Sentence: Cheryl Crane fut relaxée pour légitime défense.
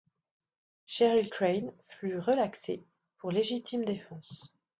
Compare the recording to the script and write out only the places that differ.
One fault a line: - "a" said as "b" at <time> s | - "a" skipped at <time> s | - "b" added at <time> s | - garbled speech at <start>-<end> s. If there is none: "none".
none